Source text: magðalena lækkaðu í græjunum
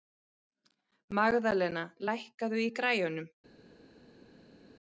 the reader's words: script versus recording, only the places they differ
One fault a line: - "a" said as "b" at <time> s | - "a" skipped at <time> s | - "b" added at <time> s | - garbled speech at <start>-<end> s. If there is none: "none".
none